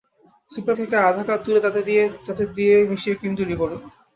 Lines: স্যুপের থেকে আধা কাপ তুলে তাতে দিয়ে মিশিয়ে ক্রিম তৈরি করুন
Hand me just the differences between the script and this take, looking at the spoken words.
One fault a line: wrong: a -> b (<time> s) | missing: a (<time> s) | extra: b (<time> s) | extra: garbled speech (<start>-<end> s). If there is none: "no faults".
no faults